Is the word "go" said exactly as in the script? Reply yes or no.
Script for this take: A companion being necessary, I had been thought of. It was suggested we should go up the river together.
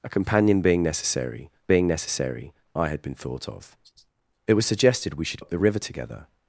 no